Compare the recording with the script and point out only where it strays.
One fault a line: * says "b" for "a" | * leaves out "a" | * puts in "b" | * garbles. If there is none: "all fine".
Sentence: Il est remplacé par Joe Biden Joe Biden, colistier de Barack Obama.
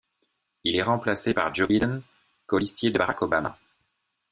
* leaves out "Joe Biden"